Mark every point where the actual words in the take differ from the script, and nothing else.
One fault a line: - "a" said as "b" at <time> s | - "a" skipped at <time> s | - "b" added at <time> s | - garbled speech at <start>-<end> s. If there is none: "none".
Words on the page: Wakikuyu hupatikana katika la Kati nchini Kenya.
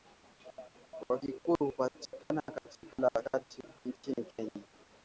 none